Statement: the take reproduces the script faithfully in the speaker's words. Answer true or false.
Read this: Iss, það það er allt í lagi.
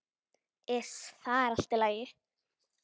false